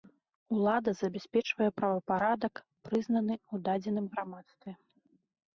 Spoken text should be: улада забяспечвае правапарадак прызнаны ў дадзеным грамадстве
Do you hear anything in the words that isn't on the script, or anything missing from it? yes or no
no